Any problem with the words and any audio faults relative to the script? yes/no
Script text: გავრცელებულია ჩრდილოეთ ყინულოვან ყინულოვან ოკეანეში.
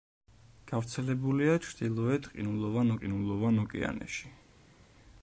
no